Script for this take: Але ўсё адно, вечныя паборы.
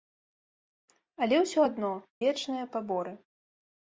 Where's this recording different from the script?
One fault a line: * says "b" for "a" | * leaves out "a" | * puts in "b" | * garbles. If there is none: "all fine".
all fine